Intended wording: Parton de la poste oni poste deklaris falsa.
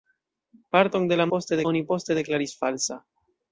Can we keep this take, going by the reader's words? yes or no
yes